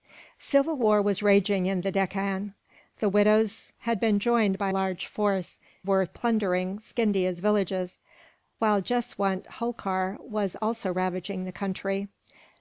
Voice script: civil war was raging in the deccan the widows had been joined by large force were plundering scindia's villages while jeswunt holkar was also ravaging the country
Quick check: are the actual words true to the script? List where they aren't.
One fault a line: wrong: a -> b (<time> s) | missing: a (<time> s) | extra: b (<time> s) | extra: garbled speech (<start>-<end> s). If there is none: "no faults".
no faults